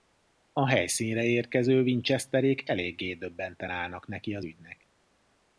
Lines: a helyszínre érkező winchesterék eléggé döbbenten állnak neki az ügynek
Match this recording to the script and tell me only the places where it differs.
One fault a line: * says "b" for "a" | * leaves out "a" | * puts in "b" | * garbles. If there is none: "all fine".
all fine